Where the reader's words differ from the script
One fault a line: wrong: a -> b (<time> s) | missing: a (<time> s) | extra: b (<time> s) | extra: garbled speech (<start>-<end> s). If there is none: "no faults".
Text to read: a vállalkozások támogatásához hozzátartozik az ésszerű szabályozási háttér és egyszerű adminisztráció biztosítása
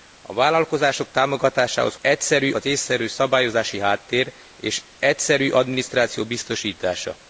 wrong: hozzátartozik -> egyszerű (2.0 s)